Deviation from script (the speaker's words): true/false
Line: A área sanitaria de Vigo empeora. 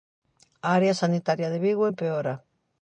false